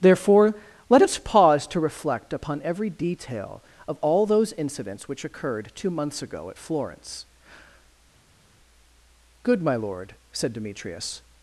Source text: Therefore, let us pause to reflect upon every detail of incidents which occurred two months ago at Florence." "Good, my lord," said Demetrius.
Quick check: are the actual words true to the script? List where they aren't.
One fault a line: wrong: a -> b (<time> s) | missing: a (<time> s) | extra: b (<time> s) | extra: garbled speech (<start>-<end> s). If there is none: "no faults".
extra: all those (4.0 s)